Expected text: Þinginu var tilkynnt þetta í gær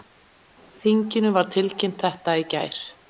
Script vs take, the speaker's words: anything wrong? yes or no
no